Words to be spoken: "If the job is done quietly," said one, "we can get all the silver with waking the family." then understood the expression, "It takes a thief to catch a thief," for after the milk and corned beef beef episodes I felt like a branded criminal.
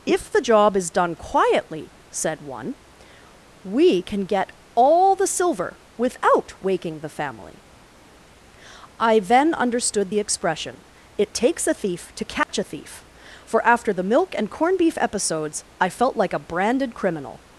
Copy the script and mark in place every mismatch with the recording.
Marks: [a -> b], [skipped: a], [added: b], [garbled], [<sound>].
"If the job is done quietly," said one, "we can get all the silver [with -> without] waking the family." [added: I] then understood the expression, "It takes a thief to catch [dropout] a thief," for after the milk and corned beef [skipped: beef] episodes I felt like a branded criminal.